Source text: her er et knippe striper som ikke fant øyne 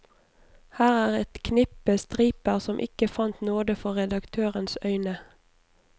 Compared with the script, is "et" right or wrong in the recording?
right